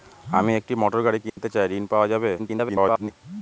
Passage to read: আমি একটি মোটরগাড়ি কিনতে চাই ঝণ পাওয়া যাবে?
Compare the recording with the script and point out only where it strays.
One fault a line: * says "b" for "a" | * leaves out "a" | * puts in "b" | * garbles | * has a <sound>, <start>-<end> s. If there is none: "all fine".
* has a dropout, 1.3-1.4 s
* garbles